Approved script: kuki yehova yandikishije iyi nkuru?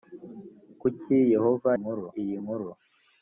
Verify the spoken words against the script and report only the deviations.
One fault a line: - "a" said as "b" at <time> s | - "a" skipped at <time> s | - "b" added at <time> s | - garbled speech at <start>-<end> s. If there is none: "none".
- "yandikishije" said as "nkuru" at 1.8 s